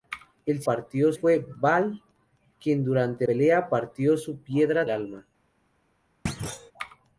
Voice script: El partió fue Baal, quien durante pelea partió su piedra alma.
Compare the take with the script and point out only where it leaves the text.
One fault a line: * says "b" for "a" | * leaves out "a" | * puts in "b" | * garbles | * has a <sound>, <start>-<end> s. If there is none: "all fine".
* has a thud, 6.3-6.7 s